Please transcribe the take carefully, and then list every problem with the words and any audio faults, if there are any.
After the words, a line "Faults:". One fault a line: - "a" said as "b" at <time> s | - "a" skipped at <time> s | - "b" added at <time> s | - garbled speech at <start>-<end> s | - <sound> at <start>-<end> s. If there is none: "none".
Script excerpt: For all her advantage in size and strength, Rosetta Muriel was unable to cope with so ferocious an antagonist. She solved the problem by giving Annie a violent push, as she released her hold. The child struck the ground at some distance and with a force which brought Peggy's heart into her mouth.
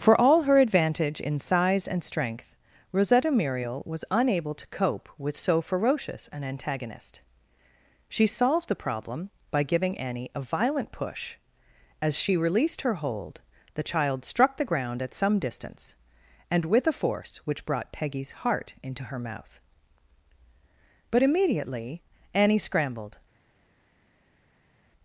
For all her advantage in size and strength, Rosetta Muriel was unable to cope with so ferocious an antagonist. She solved the problem by giving Annie a violent push, as she released her hold. The child struck the ground at some distance and with a force which brought Peggy's heart into her mouth. But immediately Annie scrambled
Faults:
- "But immediately Annie scrambled" added at 21.1 s